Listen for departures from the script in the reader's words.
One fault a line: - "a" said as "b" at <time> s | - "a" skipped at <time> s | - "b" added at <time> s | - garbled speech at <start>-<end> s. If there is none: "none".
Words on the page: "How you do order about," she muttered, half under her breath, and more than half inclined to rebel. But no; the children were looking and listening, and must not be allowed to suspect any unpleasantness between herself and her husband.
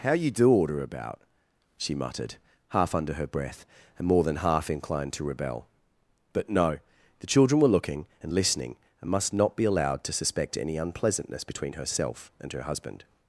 none